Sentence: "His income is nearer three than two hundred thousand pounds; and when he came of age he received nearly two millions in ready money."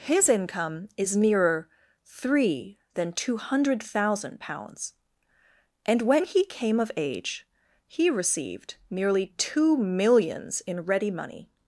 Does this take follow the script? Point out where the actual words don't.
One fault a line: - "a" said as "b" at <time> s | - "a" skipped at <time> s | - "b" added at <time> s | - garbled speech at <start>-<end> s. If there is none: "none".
none